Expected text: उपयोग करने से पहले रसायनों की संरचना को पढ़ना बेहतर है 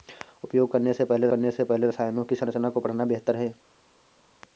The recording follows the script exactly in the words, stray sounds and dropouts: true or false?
false